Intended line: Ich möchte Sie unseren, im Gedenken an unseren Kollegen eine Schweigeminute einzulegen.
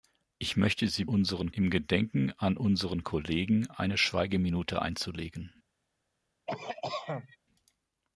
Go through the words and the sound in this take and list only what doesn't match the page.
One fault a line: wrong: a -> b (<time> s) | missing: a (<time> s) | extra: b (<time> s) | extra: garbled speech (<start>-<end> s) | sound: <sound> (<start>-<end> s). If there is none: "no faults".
sound: cough (6.5-7.4 s)